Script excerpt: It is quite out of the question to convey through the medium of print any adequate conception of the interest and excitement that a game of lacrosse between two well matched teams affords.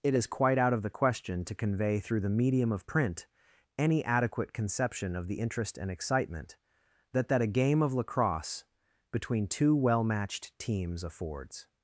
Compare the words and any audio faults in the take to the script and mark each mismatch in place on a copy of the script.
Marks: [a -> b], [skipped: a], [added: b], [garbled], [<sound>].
It is quite out of the question to convey through the medium of print any adequate conception of the interest and excitement that [added: that] a game of lacrosse between two well matched teams affords.